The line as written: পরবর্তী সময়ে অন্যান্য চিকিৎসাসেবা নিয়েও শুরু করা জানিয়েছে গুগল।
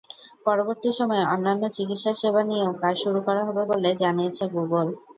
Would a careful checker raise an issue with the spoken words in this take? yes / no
yes